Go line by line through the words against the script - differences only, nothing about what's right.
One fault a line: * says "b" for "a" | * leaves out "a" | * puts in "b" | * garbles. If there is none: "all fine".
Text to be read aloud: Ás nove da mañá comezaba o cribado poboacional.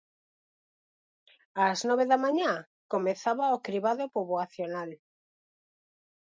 all fine